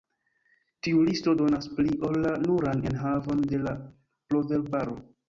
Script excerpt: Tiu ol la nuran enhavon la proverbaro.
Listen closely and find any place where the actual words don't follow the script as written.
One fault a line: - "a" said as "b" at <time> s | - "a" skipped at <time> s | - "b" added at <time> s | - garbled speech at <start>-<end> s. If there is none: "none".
- "listo donas pli" added at 1.1 s
- "de" added at 3.5 s